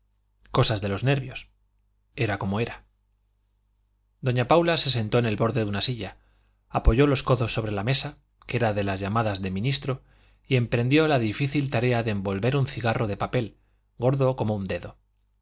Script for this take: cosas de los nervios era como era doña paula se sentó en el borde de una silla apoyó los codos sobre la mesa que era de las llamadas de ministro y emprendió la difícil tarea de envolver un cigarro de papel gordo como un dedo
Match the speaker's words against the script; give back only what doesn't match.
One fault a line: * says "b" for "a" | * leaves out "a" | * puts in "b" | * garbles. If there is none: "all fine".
all fine